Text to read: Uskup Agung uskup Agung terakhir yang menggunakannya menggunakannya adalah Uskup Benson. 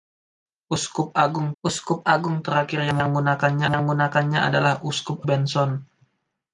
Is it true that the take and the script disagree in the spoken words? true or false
false